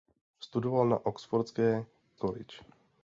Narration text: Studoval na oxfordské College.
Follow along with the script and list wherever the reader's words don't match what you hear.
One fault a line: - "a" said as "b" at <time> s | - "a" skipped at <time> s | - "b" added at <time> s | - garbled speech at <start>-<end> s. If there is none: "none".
none